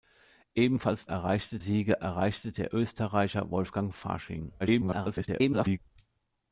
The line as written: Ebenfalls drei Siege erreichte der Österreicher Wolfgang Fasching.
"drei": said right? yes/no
no